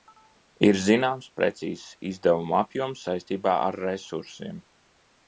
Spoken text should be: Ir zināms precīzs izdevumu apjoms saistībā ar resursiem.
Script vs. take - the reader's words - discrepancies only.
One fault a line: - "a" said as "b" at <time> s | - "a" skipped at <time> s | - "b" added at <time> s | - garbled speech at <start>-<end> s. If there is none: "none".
none